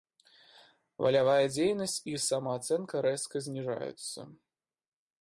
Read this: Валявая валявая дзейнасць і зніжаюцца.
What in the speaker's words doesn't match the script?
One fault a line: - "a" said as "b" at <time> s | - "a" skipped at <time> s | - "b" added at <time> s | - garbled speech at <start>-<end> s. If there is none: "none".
- "валявая" skipped at 1.4 s
- "самаацэнка рэзка" added at 2.3 s